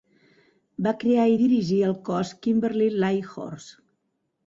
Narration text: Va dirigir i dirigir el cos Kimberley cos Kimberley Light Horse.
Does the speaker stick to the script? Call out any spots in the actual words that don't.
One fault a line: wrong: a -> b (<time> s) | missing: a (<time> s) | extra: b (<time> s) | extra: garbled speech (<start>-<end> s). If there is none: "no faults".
wrong: dirigir -> crear (1.0 s)
missing: cos Kimberley (3.0 s)